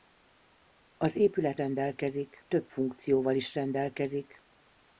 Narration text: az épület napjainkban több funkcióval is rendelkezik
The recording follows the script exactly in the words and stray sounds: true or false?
false